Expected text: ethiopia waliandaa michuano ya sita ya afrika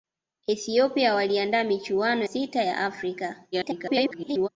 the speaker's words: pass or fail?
fail